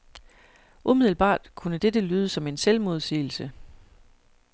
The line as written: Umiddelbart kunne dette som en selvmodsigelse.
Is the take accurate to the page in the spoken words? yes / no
no